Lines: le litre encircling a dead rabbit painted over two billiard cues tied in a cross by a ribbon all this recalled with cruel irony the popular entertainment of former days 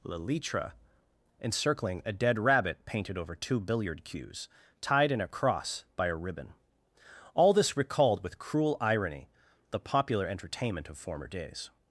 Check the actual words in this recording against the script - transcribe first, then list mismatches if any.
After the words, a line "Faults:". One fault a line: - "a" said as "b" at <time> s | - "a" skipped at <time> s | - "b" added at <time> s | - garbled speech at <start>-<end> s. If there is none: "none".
le litre encircling a dead rabbit painted over two billiard cues tied in a cross by a ribbon all this recalled with cruel irony the popular entertainment of former days
Faults:
none